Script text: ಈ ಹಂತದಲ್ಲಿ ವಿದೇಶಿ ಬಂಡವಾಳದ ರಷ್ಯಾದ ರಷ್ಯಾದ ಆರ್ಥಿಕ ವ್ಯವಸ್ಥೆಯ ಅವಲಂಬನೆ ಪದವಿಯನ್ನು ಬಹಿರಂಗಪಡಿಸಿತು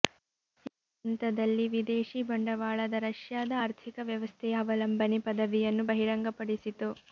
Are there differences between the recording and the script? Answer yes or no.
yes